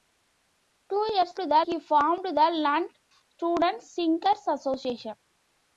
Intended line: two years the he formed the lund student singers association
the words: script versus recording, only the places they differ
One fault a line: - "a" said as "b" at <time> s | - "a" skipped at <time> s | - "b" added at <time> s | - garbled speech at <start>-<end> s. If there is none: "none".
none